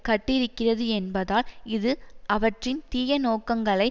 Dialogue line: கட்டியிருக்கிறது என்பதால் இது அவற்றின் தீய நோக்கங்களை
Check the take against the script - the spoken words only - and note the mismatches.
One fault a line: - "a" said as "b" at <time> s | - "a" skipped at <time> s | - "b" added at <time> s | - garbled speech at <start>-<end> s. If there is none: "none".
none